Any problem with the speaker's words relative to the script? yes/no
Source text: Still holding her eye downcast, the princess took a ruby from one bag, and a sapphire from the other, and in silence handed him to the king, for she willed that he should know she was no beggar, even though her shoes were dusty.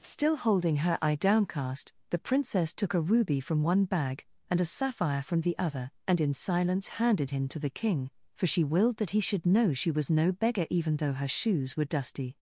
no